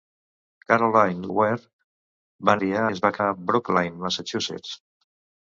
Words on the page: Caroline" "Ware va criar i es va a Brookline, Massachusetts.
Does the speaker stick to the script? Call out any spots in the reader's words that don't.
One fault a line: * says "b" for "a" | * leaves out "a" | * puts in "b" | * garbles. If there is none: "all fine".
all fine